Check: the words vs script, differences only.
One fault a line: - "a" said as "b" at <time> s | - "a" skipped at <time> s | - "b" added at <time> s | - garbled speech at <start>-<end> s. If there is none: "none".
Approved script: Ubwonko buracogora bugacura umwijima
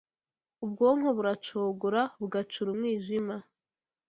none